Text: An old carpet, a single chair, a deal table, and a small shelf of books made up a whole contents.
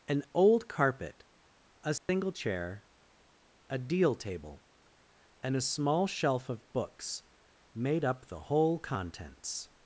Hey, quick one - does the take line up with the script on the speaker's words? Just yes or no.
no